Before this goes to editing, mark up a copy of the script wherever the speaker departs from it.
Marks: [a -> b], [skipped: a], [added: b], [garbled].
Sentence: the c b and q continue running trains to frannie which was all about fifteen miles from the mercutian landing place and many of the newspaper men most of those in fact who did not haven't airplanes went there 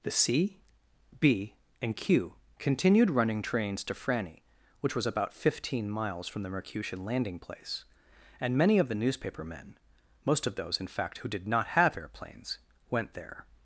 the c b and q [continue -> continued] running trains to frannie which was [skipped: all] about fifteen miles from the mercutian landing place and many of the newspaper men most of those in fact who did not [haven't -> have] airplanes went there